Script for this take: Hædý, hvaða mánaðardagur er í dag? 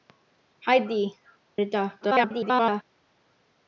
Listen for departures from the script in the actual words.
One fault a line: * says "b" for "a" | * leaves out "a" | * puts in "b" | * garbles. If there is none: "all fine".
* leaves out "hvaða mánaðardagur"
* garbles